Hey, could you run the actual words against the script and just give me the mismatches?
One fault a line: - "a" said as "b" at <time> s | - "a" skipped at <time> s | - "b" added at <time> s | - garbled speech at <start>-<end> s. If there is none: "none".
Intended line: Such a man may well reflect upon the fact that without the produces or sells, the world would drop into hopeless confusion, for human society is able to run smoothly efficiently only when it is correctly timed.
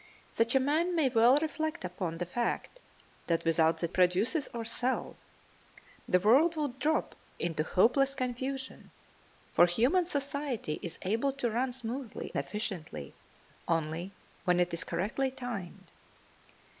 none